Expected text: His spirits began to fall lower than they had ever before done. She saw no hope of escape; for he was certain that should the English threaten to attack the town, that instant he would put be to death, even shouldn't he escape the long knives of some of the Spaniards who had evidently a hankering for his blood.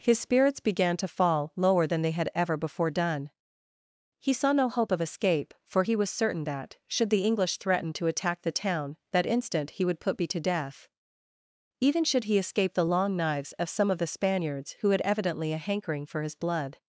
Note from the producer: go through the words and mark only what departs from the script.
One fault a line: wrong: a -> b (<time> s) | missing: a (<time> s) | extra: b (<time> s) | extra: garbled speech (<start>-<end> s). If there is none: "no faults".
wrong: She -> He (4.2 s)
wrong: shouldn't -> should (12.1 s)